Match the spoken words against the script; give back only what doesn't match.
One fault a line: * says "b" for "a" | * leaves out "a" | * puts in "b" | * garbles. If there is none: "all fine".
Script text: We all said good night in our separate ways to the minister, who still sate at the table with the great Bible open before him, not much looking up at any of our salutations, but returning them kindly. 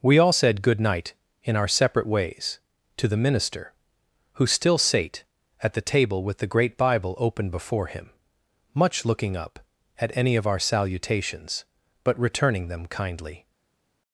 * leaves out "not"